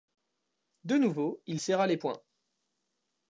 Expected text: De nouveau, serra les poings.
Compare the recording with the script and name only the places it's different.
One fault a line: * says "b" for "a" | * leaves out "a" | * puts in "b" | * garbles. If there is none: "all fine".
* puts in "il"